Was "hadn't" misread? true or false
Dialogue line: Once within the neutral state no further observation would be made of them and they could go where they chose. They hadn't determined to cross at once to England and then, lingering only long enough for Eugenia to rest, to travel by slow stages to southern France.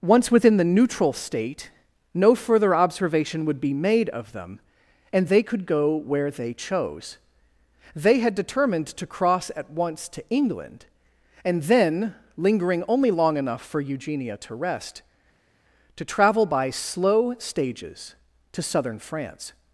true